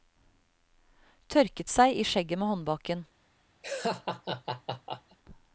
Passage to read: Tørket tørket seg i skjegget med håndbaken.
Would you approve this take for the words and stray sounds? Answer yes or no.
no